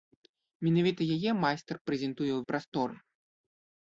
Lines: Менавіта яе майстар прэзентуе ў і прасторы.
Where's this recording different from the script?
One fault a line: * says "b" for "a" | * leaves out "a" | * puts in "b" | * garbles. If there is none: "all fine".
all fine